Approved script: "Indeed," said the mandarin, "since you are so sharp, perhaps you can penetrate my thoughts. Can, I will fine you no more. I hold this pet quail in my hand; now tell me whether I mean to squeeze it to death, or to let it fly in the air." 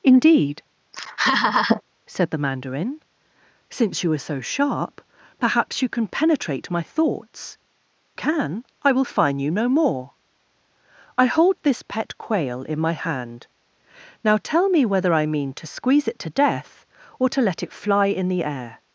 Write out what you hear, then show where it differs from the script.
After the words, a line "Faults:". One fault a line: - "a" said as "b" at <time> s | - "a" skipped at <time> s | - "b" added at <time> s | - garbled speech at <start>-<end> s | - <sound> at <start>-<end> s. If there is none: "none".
"Indeed," said the mandarin, "since you are so sharp, perhaps you can penetrate my thoughts. Can, I will fine you no more. I hold this pet quail in my hand; now tell me whether I mean to squeeze it to death, or to let it fly in the air."
Faults:
- laugh at 0.9-1.8 s